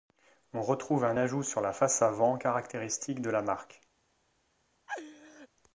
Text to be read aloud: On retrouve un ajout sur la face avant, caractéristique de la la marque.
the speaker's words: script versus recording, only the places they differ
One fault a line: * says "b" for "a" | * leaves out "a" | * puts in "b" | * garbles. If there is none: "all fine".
* leaves out "la"